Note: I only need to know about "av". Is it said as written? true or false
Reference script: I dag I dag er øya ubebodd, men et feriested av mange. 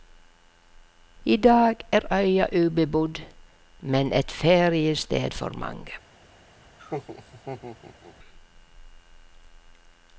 false